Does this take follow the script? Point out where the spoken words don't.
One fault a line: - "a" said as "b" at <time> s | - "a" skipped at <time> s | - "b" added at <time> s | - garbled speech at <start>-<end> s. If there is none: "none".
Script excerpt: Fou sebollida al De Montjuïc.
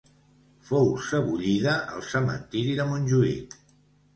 - "Cementiri" added at 2.1 s